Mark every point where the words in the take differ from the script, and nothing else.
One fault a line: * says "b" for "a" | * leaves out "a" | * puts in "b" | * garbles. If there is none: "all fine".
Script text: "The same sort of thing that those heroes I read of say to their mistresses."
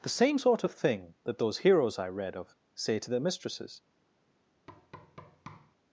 all fine